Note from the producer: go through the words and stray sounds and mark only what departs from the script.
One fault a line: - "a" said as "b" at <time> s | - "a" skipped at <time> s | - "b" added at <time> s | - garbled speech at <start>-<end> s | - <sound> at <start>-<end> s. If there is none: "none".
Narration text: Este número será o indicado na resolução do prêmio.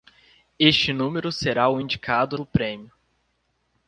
- "na resolução" skipped at 2.4 s